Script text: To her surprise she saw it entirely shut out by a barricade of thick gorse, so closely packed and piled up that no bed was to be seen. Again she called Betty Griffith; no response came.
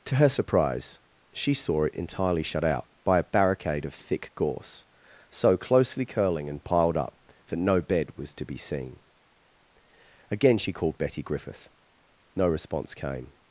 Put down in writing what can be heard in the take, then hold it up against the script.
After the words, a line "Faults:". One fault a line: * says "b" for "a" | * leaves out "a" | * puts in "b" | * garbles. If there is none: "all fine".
To her surprise she saw it entirely shut out by a barricade of thick gorse, so closely curling and piled up that no bed was to be seen. Again she called Betty Griffith; no response came.
Faults:
* says "curling" for "packed"